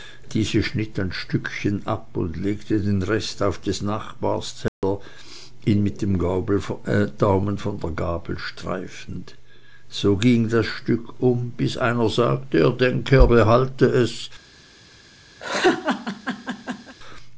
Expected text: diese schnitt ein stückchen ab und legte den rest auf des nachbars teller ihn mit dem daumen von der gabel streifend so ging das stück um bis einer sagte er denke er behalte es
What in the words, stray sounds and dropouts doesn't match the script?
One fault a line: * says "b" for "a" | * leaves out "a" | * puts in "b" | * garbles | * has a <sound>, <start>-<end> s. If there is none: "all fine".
* has a dropout, 4.7-4.8 s
* has a laugh, 15.4-17.0 s